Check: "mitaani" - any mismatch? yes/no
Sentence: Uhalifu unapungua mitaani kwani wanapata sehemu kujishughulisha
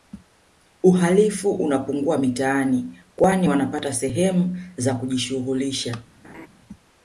no